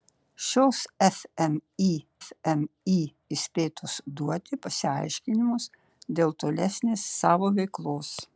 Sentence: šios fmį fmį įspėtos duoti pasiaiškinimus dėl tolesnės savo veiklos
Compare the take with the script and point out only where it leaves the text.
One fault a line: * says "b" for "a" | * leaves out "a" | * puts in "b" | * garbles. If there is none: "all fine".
all fine